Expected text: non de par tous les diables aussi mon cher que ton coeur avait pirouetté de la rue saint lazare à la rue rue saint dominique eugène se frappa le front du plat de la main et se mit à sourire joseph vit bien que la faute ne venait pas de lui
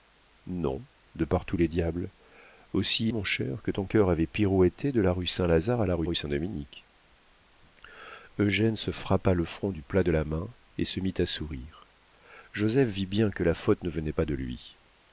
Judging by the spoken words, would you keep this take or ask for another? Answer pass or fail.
pass